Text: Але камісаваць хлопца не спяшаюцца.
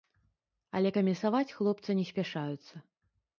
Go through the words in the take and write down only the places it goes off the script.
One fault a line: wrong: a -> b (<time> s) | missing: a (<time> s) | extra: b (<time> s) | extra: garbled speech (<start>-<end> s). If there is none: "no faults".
no faults